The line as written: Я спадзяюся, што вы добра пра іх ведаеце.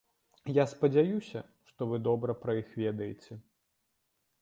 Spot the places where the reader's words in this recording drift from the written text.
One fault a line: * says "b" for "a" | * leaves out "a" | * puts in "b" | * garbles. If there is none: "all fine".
all fine